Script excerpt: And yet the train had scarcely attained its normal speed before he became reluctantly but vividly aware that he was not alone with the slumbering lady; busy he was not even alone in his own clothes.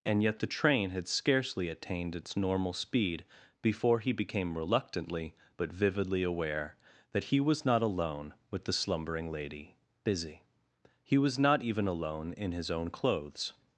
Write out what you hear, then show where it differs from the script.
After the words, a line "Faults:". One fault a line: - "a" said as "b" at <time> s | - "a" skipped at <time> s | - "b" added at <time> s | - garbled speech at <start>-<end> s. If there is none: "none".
And yet the train had scarcely attained its normal speed before he became reluctantly but vividly aware that he was not alone with the slumbering lady; busy he was not even alone in his own clothes.
Faults:
none